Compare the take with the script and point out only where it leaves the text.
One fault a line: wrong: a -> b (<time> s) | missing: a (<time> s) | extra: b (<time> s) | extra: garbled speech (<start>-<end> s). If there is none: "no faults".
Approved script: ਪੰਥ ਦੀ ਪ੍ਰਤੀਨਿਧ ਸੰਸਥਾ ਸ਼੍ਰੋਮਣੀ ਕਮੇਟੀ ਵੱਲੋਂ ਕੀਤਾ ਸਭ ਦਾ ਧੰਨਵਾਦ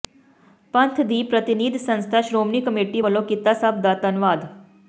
no faults